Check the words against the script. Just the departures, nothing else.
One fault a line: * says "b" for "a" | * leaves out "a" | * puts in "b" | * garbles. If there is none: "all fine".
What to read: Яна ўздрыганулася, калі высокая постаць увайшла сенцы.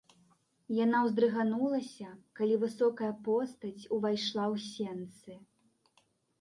* puts in "ў"